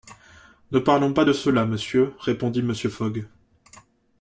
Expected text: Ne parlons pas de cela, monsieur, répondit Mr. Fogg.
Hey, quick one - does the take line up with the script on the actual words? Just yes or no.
yes